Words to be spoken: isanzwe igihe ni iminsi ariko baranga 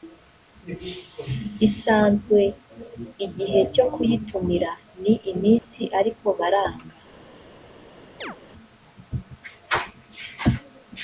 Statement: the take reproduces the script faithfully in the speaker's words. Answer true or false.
false